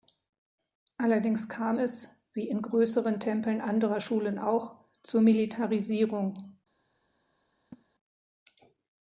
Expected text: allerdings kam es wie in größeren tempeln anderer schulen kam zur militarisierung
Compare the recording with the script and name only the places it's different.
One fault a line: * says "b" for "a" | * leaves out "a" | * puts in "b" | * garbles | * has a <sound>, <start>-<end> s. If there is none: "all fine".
* says "auch" for "kam"
* has a laugh, 7.7-7.9 s